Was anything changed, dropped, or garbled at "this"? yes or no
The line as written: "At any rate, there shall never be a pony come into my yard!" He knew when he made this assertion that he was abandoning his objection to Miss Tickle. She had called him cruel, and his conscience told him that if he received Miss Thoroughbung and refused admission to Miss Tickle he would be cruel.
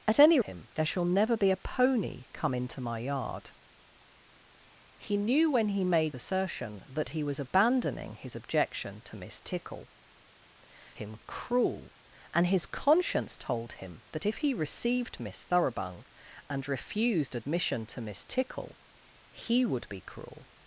yes